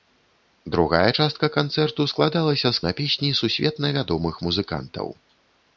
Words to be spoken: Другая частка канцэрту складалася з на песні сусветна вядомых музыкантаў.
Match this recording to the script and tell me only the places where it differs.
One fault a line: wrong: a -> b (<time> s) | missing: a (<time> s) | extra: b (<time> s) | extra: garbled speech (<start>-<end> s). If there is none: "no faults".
no faults